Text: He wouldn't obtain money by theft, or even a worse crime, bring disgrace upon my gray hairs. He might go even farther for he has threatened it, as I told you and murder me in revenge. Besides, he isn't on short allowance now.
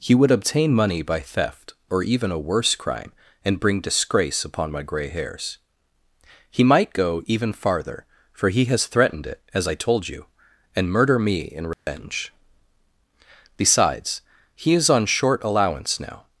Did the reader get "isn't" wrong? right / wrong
wrong